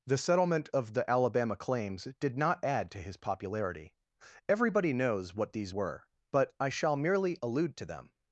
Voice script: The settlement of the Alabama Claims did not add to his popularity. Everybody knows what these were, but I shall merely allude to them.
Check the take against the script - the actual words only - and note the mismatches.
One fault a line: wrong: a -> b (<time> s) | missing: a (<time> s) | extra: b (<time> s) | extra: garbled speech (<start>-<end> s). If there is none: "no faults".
no faults